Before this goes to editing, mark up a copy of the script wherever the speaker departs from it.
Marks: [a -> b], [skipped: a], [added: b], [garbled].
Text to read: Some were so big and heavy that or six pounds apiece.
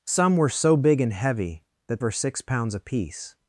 Some were so big and heavy that or six pounds apiece.